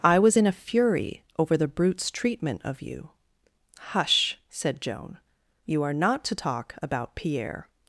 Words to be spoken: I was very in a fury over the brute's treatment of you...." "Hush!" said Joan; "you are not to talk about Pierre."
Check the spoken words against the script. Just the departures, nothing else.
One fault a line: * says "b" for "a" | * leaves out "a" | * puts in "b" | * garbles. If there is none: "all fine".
* leaves out "very"